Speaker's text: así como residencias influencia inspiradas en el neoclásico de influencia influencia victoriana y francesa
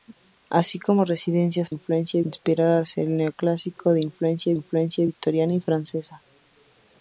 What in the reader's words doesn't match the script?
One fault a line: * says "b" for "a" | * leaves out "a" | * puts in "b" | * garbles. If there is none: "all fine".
all fine